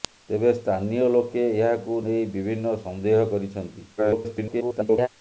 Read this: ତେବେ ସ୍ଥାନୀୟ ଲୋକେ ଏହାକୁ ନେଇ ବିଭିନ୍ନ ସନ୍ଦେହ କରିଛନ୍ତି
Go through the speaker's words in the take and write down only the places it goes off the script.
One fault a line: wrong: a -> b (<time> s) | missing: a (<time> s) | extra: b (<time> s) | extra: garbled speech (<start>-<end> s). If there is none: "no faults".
extra: garbled speech (4.0-5.1 s)